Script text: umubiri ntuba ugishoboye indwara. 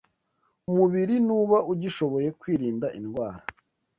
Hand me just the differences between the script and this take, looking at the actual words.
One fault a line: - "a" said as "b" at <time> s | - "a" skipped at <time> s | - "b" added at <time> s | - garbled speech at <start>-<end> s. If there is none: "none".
- "kwirinda" added at 2.4 s